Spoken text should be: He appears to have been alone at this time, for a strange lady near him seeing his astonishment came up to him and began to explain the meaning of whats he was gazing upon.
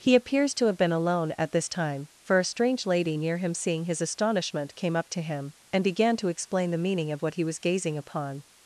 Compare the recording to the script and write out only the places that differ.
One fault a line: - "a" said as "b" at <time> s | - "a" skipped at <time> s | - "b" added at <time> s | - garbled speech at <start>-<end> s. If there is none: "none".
- "whats" said as "what" at 7.2 s